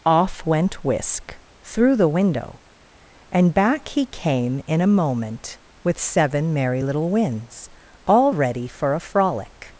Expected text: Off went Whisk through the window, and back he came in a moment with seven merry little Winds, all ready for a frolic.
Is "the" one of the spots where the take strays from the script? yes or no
no